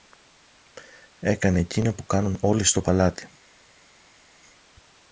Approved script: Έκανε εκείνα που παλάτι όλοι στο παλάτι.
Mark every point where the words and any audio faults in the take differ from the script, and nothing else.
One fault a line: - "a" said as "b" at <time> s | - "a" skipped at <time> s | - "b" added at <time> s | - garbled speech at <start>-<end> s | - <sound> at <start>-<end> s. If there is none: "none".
- "παλάτι" said as "κάνουν" at 2.0 s